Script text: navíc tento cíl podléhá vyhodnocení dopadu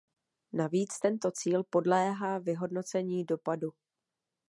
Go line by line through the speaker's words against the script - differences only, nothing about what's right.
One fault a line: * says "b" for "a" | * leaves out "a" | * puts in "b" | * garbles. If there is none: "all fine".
all fine